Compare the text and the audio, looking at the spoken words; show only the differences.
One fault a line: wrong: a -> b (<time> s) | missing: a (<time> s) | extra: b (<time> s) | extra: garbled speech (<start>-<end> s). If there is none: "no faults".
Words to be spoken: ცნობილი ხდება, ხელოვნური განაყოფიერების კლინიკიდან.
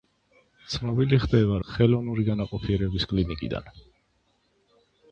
no faults